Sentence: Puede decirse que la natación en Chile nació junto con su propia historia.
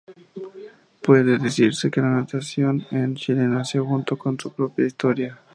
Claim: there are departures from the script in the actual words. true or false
false